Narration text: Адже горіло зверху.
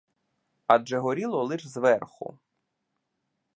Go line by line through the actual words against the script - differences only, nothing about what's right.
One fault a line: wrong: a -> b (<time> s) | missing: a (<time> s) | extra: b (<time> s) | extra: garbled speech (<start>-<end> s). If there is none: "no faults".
extra: лиш (1.4 s)